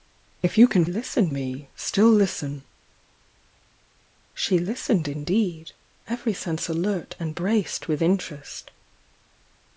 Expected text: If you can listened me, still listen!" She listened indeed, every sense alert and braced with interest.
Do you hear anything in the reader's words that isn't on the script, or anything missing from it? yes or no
no